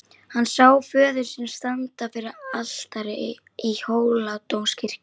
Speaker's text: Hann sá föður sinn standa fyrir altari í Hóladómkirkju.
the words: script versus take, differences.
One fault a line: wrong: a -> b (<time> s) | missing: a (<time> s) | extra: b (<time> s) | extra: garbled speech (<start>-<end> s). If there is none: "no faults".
no faults